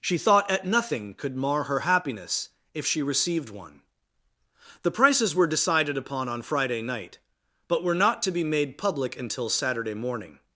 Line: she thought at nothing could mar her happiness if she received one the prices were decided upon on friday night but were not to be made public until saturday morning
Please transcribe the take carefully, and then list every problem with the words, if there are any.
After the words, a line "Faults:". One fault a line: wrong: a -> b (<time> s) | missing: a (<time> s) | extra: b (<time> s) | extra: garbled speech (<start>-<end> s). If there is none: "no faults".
she thought at nothing could mar her happiness if she received one the prices were decided upon on friday night but were not to be made public until saturday morning
Faults:
no faults